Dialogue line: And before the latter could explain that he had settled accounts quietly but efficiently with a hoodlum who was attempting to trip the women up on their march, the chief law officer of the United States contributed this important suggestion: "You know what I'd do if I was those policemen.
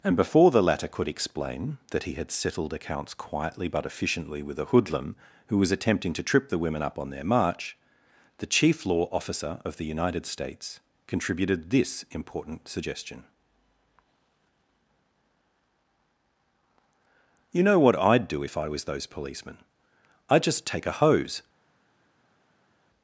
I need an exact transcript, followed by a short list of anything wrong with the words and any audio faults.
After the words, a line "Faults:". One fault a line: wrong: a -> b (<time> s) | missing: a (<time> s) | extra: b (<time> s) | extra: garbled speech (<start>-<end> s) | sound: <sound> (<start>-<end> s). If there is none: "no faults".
And before the latter could explain that he had settled accounts quietly but efficiently with a hoodlum who was attempting to trip the women up on their march, the chief law officer of the United States contributed this important suggestion: "You know what I'd do if I was those policemen. I'd just take a hose
Faults:
extra: I'd just take a hose (20.3 s)